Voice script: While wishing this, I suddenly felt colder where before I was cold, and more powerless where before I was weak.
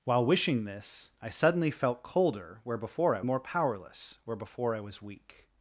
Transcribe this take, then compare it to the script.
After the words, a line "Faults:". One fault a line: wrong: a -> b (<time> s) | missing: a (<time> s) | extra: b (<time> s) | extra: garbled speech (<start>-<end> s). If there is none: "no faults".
While wishing this, I suddenly felt colder where before I more powerless where before I was weak.
Faults:
missing: was cold and (3.2 s)